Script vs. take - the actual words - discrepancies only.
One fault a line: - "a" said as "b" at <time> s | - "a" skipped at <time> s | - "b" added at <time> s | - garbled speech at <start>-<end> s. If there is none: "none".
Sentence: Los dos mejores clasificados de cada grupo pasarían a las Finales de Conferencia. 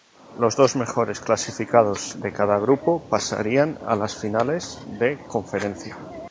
none